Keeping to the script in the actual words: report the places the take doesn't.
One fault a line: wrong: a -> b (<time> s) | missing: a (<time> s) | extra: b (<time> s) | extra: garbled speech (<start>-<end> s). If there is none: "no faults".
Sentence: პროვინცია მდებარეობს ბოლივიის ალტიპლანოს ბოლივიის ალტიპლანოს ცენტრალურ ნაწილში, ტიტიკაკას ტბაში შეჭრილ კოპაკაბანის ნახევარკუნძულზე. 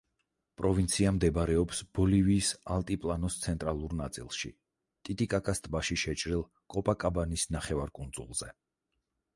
missing: ბოლივიის ალტიპლანოს (3.4 s)